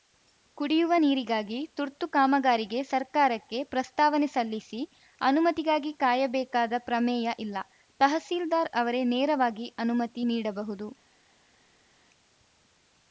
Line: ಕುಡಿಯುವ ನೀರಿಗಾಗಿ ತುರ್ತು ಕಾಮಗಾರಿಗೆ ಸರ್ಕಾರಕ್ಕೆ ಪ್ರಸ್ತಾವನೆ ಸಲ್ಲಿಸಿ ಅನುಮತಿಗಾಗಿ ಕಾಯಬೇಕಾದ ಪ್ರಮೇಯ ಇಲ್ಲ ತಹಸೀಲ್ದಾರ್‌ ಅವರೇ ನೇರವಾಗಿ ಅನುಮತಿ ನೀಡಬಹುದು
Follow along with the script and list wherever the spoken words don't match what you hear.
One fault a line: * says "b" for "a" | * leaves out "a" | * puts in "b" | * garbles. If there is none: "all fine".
all fine